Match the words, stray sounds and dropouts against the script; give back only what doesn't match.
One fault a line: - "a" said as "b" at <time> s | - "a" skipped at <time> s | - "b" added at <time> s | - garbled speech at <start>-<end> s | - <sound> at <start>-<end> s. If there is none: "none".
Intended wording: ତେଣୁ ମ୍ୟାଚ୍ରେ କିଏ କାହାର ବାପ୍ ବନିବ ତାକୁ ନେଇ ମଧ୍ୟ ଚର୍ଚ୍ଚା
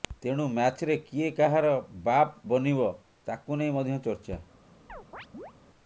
- chirp at 4.9-5.5 s